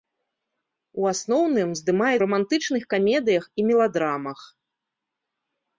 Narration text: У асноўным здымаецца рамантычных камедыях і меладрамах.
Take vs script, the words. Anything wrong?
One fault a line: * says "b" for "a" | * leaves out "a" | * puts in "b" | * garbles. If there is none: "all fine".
all fine